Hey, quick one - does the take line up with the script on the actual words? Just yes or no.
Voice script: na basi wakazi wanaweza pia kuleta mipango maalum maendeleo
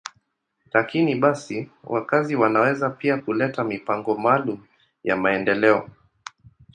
no